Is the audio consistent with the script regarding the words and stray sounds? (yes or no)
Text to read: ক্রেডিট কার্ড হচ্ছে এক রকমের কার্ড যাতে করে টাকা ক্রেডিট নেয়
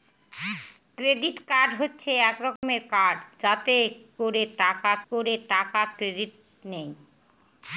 no